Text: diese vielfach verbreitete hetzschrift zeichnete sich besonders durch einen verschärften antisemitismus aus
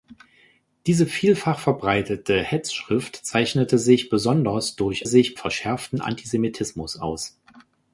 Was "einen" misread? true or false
true